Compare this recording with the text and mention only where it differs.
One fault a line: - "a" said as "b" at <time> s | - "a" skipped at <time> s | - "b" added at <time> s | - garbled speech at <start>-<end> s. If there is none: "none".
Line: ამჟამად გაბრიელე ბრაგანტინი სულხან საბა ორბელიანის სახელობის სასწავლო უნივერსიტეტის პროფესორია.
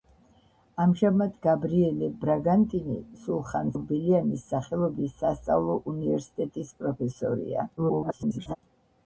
- "საბა" skipped at 3.7 s
- garbled speech at 7.8-8.6 s